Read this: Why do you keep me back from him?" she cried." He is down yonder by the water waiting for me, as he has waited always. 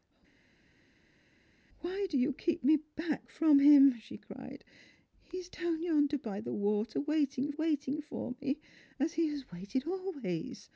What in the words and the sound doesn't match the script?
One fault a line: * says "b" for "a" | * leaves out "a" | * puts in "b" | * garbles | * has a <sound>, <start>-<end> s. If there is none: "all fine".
* puts in "waiting"